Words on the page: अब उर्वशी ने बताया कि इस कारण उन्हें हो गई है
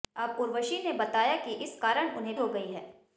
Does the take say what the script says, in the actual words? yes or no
yes